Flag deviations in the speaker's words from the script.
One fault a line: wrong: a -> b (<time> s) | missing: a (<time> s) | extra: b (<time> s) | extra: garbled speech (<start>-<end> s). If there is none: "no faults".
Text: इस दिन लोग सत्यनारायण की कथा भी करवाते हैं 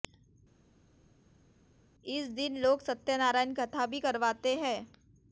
missing: की (3.5 s)